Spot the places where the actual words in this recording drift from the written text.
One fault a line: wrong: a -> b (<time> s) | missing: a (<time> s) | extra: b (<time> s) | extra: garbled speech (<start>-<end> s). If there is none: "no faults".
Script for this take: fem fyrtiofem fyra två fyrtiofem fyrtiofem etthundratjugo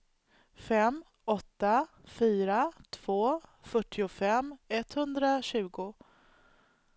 wrong: fyrtiofem -> åtta (1.2 s)
missing: fyrtiofem (4.6 s)